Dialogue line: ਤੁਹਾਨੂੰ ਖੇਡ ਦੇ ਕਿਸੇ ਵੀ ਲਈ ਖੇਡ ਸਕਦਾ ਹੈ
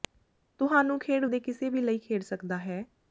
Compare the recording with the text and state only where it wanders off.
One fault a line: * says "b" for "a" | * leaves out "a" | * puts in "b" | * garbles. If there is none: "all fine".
all fine